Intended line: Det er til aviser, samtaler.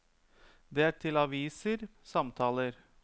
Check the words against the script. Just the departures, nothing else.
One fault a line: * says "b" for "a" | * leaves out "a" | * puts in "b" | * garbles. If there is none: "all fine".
all fine